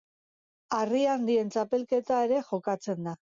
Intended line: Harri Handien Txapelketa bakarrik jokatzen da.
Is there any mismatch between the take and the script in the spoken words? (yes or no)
yes